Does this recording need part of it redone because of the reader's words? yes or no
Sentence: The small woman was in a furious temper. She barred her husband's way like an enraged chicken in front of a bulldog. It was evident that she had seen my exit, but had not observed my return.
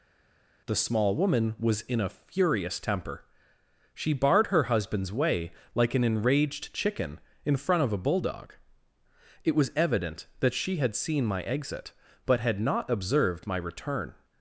no